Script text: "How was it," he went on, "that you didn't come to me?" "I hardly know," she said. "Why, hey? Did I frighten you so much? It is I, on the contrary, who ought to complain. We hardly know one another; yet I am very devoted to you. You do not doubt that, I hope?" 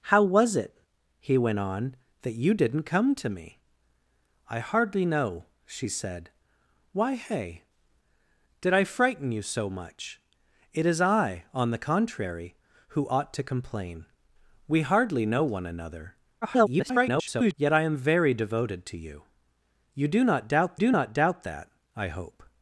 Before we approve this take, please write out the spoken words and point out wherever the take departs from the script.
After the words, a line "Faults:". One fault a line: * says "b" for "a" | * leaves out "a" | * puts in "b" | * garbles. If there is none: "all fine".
"How was it," he went on, "that you didn't come to me?" "I hardly know," she said. "Why, hey? Did I frighten you so much? It is I, on the contrary, who ought to complain. We hardly know one another; [garbled] yet I am very devoted to you. You do not doubt do not doubt that, I hope?"
Faults:
* garbles
* puts in "do not doubt"